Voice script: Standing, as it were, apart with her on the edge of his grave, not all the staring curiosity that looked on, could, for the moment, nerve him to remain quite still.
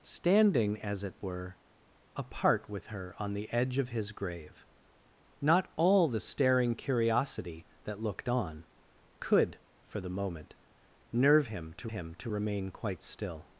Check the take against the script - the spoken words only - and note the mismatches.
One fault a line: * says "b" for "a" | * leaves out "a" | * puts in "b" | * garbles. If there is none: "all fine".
* puts in "him to"